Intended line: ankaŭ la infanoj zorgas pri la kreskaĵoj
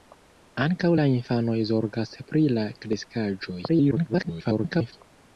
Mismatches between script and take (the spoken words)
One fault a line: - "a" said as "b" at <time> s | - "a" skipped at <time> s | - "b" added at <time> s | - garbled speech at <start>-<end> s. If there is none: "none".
- garbled speech at 3.7-4.9 s